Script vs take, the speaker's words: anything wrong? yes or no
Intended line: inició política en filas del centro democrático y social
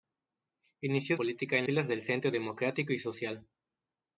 no